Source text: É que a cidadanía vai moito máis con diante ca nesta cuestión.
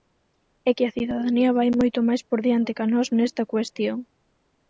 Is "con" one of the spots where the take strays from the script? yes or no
yes